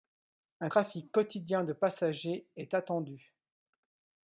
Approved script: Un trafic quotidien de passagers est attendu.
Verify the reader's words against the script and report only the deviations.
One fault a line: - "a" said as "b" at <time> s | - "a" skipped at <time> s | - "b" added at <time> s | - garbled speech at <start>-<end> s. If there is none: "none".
none